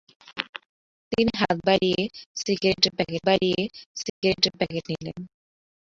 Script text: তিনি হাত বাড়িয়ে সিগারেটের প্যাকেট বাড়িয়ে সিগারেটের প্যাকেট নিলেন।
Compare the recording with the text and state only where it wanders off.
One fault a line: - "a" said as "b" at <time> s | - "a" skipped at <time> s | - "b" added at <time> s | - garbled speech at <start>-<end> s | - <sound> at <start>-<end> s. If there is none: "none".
- dropout at 4.1-4.2 s